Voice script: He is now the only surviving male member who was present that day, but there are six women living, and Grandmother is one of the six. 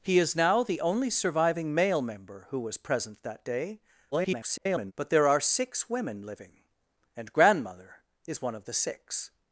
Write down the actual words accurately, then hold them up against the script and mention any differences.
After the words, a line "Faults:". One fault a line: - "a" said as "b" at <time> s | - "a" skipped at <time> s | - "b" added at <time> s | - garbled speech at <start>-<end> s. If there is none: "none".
He is now the only surviving male member who was present that day, [garbled] but there are six women living, and Grandmother is one of the six.
Faults:
- garbled speech at 4.1-4.9 s